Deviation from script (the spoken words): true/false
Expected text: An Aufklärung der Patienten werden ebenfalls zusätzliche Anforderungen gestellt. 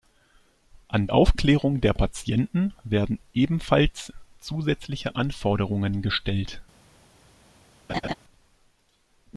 false